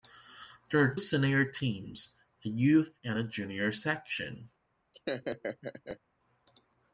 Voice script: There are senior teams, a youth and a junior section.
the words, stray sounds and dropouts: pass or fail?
fail